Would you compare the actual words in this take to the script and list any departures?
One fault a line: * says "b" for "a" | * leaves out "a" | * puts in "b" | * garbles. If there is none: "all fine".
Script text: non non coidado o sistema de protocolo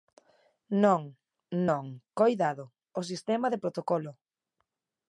all fine